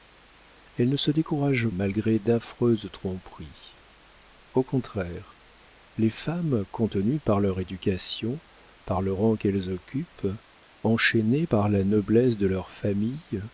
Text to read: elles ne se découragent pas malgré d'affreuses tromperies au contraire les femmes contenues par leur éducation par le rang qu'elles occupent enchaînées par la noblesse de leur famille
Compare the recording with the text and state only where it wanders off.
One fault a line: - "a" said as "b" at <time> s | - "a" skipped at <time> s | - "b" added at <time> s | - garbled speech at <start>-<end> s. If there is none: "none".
- "pas" skipped at 1.7 s